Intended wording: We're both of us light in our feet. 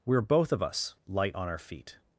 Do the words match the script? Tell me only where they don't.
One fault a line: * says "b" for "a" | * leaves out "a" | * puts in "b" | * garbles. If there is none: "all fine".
* says "on" for "in"